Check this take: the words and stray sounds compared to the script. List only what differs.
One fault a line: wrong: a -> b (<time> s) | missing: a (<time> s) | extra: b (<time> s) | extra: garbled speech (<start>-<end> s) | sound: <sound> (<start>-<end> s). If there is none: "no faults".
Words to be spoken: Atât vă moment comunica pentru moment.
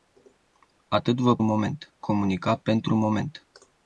no faults